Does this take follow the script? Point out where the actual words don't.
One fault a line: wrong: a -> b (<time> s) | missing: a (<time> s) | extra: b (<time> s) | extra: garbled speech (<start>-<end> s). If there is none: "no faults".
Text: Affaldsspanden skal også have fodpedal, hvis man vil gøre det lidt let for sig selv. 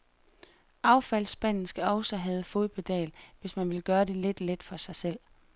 no faults